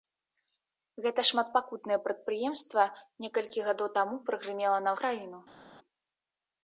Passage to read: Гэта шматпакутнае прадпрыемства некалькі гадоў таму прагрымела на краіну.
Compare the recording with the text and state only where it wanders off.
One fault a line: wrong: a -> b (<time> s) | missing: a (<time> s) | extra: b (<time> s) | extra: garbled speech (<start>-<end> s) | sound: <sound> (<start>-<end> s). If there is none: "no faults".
no faults